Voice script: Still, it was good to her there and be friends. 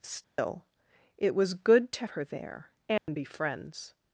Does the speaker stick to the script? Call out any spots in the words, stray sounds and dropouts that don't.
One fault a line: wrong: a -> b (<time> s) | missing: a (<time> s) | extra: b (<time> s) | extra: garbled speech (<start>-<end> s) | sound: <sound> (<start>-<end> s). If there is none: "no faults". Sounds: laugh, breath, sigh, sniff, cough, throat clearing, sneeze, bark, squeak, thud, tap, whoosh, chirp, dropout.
sound: dropout (0.2-0.4 s)
sound: dropout (3.0-3.1 s)